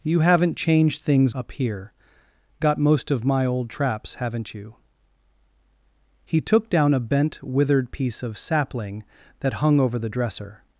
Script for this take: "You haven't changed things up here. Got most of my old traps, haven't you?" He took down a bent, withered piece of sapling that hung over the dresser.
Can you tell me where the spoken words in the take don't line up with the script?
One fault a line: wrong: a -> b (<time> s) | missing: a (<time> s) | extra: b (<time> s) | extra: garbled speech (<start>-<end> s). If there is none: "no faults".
no faults